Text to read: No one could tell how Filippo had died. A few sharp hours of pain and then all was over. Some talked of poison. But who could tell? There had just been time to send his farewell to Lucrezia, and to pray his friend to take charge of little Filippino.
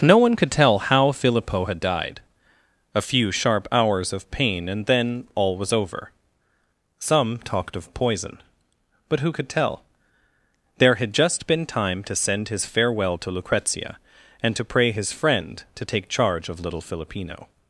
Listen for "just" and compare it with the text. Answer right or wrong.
right